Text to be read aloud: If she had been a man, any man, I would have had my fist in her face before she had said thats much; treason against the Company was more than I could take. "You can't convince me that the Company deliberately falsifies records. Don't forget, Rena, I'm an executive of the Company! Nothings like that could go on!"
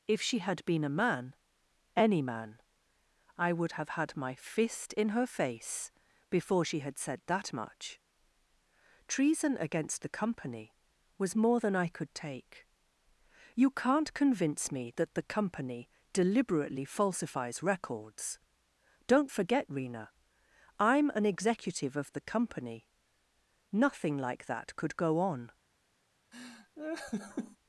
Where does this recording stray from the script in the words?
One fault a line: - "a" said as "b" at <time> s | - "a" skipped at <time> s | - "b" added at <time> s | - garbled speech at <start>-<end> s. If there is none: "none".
- "thats" said as "that" at 7.3 s
- "Nothings" said as "Nothing" at 23.7 s